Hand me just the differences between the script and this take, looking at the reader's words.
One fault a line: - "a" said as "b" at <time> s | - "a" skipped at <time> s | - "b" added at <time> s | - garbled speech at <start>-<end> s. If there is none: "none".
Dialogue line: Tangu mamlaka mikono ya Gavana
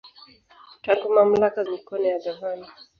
none